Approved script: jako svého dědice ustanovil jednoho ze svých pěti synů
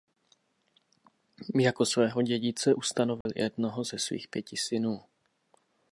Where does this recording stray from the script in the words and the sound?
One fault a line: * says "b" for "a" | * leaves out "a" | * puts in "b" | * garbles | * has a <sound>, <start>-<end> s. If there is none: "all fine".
* has a dropout, 3.2-3.3 s